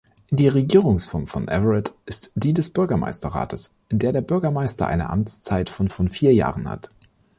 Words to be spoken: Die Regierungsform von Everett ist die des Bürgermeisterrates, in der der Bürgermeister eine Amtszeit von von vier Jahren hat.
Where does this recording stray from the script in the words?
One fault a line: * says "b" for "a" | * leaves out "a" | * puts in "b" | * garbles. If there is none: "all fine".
all fine